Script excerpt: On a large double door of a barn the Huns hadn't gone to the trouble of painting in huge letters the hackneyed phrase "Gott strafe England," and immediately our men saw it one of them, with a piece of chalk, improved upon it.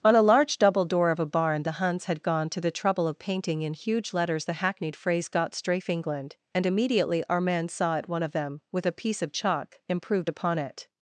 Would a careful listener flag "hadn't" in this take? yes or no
yes